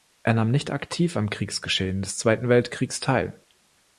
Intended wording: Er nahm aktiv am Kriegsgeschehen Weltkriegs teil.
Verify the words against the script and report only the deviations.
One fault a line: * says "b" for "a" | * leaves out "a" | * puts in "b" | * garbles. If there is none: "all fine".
* puts in "nicht"
* puts in "des Zweiten"